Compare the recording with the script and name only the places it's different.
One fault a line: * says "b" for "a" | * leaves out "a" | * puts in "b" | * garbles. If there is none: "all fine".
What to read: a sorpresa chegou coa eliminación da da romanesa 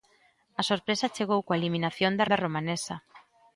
all fine